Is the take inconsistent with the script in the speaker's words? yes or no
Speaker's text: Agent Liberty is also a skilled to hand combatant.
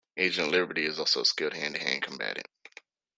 yes